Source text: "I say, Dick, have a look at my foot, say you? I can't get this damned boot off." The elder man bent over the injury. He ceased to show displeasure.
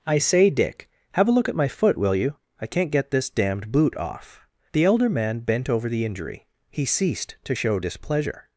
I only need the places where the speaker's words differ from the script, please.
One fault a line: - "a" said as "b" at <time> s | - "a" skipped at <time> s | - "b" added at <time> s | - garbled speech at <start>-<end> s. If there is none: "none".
- "say" said as "will" at 2.0 s